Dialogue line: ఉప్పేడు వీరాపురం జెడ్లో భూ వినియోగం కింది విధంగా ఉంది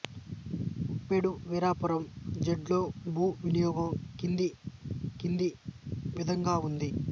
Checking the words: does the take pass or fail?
fail